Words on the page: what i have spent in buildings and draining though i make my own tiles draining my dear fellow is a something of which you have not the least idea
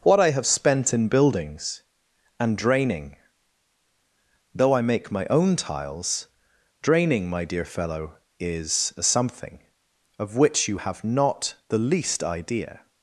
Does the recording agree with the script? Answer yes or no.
yes